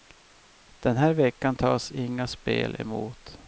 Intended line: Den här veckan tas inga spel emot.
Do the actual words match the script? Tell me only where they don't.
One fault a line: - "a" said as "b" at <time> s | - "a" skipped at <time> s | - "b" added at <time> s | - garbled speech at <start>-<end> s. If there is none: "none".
none